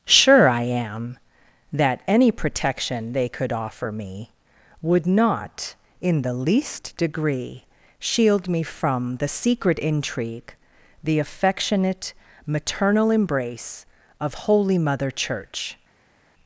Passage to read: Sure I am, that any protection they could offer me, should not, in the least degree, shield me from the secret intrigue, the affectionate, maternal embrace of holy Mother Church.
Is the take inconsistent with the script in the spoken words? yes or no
yes